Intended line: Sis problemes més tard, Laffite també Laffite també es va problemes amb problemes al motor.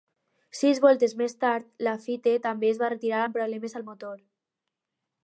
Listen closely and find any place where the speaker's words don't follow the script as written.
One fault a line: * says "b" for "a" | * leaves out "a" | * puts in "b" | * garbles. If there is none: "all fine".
* says "voltes" for "problemes"
* leaves out "Laffite també"
* says "retirar" for "problemes"